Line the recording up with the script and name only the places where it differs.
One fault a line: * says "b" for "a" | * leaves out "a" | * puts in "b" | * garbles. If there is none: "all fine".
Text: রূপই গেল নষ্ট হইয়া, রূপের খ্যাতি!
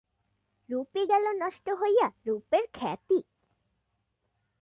all fine